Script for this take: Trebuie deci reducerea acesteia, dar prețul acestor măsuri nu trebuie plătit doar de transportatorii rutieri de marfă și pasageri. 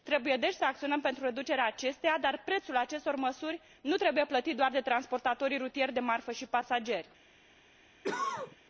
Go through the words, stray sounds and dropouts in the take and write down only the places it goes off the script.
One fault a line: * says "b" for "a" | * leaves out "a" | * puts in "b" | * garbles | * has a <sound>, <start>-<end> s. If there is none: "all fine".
* puts in "să acționăm pentru"
* has a cough, 8.0-8.6 s